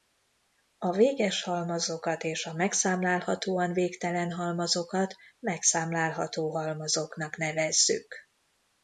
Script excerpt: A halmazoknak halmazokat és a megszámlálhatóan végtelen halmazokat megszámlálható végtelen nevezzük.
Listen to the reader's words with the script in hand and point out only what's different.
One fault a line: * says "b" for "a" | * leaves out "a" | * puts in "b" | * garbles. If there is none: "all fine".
* says "véges" for "halmazoknak"
* says "halmazoknak" for "végtelen"